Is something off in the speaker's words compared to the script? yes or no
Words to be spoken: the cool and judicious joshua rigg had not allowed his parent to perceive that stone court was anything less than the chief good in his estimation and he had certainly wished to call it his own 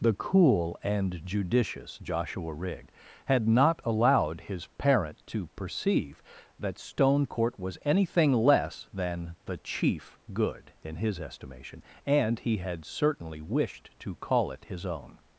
no